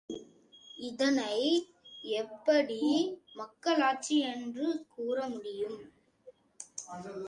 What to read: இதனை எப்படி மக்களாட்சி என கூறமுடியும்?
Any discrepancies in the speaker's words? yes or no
yes